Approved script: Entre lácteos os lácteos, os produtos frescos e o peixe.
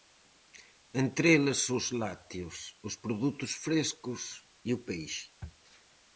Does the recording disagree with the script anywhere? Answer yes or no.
yes